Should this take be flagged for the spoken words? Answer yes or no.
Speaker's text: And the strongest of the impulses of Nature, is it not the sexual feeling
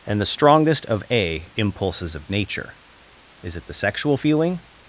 yes